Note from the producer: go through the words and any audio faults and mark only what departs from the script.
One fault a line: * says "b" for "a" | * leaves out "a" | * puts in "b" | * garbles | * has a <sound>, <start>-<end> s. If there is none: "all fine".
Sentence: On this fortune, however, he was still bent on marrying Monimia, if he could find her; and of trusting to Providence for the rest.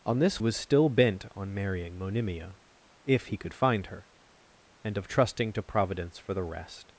* leaves out "fortune however he"